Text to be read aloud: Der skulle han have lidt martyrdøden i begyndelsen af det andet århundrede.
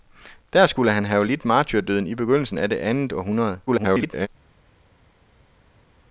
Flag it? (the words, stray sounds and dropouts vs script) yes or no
yes